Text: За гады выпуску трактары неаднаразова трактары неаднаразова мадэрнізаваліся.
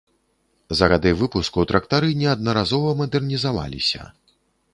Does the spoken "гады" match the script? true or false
true